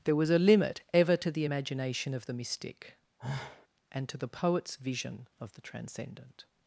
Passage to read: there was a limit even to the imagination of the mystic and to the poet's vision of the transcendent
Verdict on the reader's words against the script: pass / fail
fail